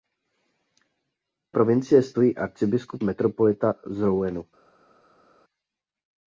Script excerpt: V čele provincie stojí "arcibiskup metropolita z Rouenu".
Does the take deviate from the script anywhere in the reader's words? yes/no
yes